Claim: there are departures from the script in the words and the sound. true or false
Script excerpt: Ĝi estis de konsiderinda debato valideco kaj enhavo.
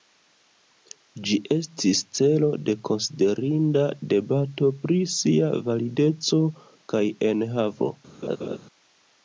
true